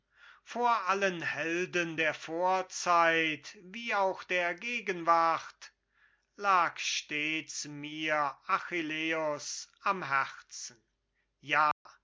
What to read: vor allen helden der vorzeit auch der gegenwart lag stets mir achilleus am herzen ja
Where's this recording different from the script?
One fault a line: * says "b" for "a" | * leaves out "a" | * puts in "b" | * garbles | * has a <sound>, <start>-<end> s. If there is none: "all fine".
* puts in "wie"
* has a dropout, 11.7-11.9 s